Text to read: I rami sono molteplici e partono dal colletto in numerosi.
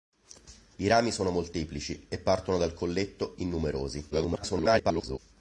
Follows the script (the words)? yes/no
no